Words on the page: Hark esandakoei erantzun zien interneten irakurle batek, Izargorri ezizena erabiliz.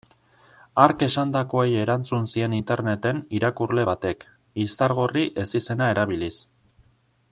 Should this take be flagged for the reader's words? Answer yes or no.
no